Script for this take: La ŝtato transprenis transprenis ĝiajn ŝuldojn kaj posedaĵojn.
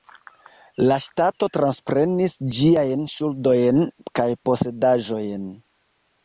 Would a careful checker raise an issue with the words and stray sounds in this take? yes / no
yes